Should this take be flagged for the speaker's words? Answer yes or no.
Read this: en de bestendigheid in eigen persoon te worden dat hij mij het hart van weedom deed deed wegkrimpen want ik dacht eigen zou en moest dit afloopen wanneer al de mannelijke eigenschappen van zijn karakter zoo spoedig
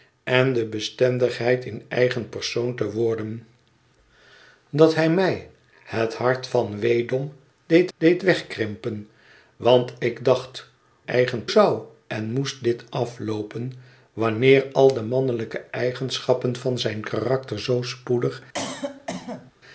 no